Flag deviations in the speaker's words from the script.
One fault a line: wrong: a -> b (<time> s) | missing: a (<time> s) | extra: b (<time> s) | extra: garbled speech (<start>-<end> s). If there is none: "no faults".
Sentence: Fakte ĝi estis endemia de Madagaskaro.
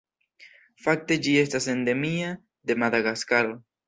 wrong: estis -> estas (1.4 s)